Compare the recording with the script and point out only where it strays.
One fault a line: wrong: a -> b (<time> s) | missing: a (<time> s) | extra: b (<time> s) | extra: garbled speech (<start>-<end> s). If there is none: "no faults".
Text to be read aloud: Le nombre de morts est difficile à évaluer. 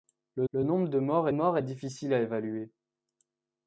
extra: le (0.5 s)
extra: morts (1.3 s)